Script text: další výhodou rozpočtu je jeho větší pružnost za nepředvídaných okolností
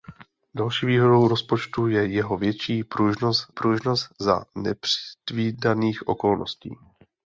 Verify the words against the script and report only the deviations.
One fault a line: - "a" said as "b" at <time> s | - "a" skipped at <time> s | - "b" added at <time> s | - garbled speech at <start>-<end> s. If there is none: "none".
- "pružnost" added at 3.5 s